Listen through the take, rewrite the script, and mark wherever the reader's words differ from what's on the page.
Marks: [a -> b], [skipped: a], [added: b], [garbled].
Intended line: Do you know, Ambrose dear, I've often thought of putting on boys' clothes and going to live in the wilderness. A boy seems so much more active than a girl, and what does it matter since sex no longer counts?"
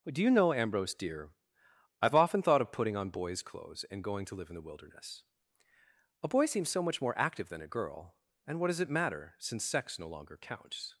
Do you know, Ambrose dear, I've often thought of putting on boys' clothes and going to live in the wilderness. A boy seems so much more active than a girl, and what does it matter since sex no longer counts?"